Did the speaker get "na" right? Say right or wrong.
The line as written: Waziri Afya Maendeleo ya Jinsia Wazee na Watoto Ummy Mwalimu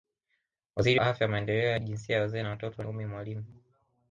right